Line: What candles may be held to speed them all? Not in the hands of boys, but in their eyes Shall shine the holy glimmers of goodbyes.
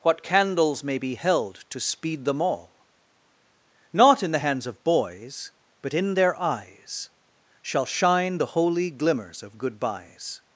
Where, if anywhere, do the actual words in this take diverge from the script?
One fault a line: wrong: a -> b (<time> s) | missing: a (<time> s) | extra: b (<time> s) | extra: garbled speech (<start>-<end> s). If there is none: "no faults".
no faults